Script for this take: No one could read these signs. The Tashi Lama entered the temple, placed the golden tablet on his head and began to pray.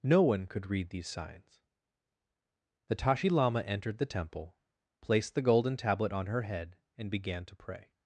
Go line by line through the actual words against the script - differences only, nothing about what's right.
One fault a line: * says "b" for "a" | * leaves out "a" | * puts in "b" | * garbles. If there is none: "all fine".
* says "her" for "his"